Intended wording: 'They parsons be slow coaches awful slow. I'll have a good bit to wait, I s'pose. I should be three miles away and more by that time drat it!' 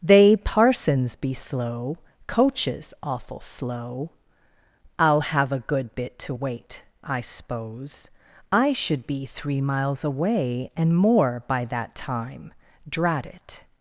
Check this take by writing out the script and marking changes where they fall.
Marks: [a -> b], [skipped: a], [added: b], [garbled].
'They parsons be slow coaches awful slow. I'll have a good bit to wait, I s'pose. I should be three miles away and more by that time drat it!'